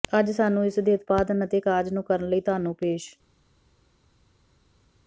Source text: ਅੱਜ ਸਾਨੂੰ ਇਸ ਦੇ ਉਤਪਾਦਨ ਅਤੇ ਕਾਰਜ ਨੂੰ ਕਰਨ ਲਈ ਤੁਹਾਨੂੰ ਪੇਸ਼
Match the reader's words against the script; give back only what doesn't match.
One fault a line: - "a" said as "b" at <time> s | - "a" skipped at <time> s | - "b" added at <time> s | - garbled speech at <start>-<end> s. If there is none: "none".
none